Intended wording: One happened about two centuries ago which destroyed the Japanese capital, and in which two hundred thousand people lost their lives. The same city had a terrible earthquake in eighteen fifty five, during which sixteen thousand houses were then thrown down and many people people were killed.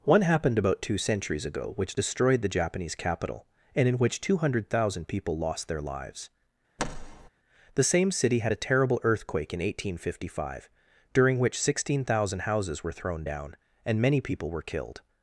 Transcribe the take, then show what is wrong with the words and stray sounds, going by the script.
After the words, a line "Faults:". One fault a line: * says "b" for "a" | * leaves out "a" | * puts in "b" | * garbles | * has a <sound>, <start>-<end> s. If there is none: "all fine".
One happened about two centuries ago which destroyed the Japanese capital, and in which two hundred thousand people lost their lives. The same city had a terrible earthquake in eighteen fifty five, during which sixteen thousand houses were thrown down and many people were killed.
Faults:
* has a thud, 6.8-7.3 s
* leaves out "then"
* leaves out "people"